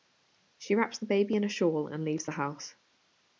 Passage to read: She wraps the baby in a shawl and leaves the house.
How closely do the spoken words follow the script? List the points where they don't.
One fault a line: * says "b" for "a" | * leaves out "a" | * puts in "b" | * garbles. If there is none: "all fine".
all fine